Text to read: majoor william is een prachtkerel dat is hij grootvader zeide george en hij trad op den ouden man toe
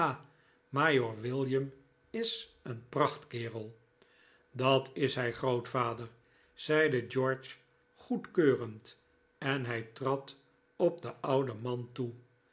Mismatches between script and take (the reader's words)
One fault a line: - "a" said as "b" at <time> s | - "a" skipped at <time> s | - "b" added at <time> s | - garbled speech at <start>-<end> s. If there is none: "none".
- "goedkeurend" added at 8.0 s